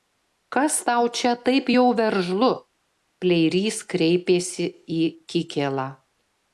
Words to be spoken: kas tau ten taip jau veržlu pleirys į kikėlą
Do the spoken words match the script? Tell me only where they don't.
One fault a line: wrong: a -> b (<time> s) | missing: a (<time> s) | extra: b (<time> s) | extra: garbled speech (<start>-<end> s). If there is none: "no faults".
wrong: ten -> čia (1.2 s)
extra: kreipėsi (3.9 s)